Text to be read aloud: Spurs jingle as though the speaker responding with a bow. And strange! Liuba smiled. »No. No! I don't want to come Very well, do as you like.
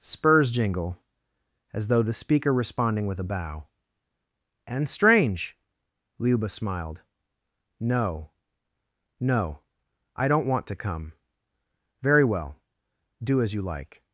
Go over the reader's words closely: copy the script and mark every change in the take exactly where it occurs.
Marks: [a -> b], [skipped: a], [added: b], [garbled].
Spurs jingle as though the speaker responding with a bow. And strange! Liuba smiled. »No. No! I don't want to come Very well, do as you like.